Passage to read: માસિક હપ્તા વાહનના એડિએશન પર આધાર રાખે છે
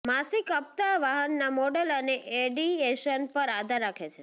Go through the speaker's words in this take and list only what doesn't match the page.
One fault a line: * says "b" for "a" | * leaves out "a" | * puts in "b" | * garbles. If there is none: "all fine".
* puts in "મોડલ અને"